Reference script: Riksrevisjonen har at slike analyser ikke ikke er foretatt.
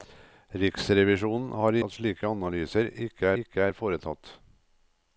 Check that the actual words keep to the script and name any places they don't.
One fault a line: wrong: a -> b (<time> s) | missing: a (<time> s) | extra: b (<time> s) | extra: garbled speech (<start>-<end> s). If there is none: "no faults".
no faults